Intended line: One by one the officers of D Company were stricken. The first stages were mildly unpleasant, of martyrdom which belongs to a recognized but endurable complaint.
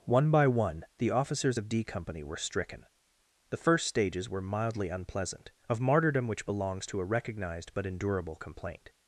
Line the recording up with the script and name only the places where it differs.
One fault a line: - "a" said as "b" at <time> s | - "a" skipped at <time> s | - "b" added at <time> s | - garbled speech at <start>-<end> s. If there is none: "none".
none